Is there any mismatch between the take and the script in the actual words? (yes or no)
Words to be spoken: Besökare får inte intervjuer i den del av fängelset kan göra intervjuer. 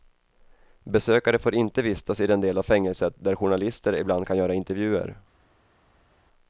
yes